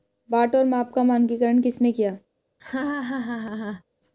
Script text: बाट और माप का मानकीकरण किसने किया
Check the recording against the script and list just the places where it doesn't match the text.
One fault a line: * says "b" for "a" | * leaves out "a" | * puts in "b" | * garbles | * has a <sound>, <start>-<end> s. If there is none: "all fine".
* has a laugh, 2.6-3.8 s